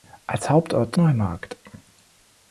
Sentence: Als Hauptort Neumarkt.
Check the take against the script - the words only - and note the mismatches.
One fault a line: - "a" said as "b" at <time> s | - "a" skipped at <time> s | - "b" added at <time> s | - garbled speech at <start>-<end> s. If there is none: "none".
none